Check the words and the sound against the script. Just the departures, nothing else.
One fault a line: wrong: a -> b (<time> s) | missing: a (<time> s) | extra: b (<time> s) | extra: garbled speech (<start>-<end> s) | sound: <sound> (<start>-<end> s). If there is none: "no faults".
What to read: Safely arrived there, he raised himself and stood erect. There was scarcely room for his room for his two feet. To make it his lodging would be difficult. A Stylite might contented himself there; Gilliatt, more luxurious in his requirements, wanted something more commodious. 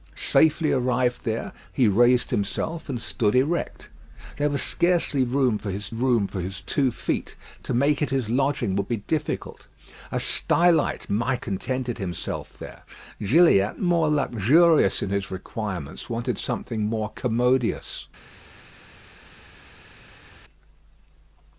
no faults